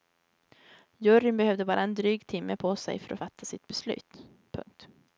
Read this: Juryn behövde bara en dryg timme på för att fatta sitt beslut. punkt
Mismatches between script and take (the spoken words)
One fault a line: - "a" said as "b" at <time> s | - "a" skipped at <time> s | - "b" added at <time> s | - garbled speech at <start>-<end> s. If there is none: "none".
- "sig" added at 2.8 s